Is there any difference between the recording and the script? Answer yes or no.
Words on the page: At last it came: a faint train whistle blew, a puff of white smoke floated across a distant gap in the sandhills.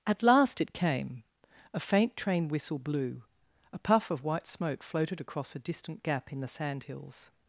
no